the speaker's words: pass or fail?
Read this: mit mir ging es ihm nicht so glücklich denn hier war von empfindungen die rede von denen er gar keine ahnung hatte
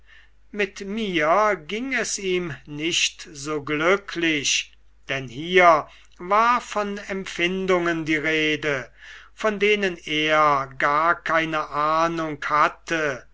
pass